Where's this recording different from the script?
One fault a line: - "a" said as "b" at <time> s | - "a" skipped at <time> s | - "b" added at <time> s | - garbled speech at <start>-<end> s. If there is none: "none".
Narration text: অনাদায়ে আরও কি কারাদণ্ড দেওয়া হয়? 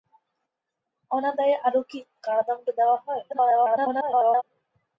- garbled speech at 3.3-4.4 s